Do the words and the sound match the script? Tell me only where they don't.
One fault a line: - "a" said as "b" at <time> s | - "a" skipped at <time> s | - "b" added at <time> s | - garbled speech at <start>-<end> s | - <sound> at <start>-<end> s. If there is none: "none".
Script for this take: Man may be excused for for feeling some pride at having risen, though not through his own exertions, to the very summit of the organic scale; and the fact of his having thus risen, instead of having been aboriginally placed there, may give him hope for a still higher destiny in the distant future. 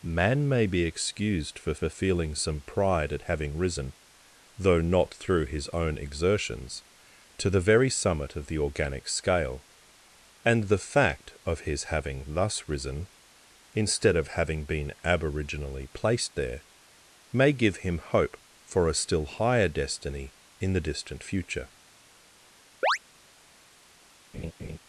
- chirp at 22.8-23.0 s
- laugh at 24.3-24.8 s